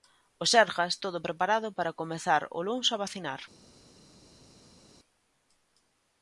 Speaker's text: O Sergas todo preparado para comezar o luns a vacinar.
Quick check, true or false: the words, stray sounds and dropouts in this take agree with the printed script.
true